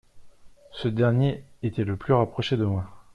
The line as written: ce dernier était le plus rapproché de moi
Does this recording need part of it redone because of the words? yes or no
no